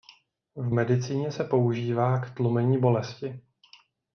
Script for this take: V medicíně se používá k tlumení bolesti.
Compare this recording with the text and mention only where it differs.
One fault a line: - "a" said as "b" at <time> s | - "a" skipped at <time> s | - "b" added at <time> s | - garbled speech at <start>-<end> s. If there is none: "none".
none